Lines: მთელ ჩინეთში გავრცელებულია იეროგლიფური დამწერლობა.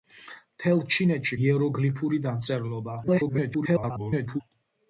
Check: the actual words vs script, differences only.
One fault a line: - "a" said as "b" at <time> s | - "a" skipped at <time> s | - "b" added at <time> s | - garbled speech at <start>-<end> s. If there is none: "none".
- "გავრცელებულია" skipped at 1.4 s
- garbled speech at 3.0-4.4 s